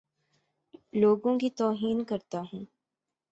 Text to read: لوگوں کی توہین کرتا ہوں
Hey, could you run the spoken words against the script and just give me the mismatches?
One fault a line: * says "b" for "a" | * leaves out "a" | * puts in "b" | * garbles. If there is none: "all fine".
all fine